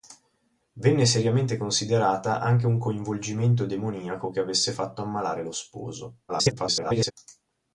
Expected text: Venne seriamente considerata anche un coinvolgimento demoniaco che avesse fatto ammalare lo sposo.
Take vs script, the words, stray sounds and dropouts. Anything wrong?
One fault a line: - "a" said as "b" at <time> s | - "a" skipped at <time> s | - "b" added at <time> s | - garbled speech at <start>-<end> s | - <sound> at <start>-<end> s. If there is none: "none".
- garbled speech at 6.3-7.1 s